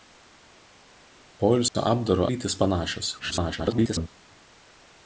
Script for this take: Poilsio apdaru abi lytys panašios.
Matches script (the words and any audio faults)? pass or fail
fail